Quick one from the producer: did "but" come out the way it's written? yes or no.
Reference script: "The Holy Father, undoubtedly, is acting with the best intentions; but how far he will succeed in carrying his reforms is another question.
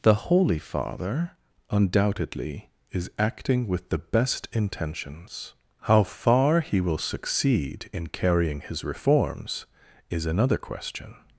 no